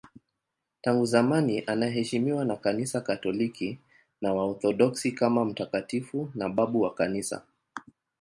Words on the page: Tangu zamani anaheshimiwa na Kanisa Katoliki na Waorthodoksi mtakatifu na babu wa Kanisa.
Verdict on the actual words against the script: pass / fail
fail